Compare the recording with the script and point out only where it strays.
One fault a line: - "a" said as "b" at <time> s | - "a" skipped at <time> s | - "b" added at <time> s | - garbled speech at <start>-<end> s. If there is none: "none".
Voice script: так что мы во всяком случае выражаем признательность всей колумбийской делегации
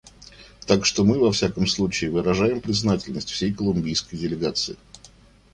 none